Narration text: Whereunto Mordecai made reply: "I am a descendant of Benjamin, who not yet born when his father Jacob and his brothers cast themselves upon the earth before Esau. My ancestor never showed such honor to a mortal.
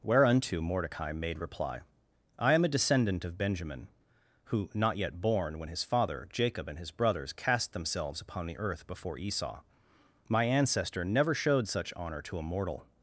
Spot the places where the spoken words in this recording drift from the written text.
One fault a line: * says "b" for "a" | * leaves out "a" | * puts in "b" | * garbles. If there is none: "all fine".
all fine